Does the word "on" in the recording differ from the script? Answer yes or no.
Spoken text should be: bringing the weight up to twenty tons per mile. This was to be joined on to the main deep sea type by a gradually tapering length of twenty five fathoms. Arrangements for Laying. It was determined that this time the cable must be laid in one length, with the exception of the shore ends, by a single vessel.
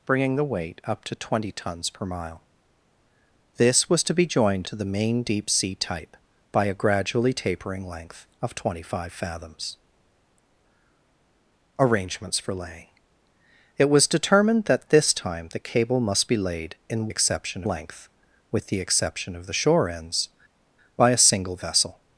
yes